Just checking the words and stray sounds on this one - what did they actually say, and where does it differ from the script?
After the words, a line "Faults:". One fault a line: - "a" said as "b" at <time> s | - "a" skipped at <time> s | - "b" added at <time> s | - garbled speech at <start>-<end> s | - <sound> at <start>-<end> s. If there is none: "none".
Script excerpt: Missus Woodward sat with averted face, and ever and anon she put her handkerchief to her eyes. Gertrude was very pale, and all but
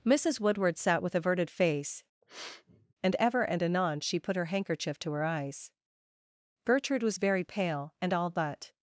Missus Woodward sat with averted face, and ever and anon she put her handkerchief to her eyes. Gertrude was very pale, and all but
Faults:
- sniff at 2.2-2.9 s